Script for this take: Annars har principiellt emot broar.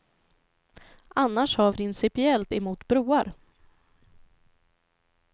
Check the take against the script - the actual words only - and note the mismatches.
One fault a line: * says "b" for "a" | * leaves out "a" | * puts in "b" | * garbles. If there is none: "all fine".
all fine